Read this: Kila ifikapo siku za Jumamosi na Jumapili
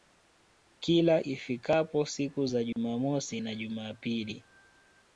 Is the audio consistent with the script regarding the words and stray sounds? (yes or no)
no